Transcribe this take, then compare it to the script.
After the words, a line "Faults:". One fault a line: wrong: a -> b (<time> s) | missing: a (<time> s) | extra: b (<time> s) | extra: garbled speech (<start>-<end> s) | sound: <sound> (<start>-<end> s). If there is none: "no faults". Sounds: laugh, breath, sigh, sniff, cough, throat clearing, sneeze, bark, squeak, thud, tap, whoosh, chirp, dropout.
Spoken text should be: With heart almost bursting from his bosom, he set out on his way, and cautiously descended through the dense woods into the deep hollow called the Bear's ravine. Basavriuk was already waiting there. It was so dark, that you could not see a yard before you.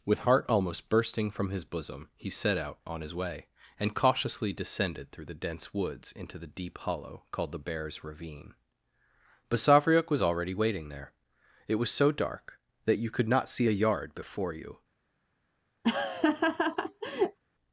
With heart almost bursting from his bosom, he set out on his way, and cautiously descended through the dense woods into the deep hollow called the Bear's ravine. Basavriuk was already waiting there. It was so dark, that you could not see a yard before you.
Faults:
sound: laugh (15.8-17.4 s)